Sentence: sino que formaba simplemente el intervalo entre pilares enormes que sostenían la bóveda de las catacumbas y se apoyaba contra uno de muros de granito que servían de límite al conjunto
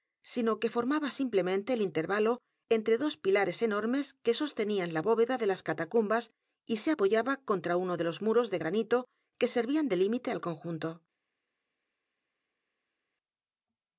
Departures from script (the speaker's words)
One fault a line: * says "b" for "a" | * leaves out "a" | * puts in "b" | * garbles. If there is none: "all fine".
* puts in "dos"
* puts in "los"